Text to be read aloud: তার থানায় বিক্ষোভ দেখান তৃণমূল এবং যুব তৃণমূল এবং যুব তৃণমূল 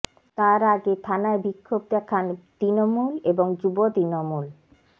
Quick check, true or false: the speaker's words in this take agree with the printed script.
false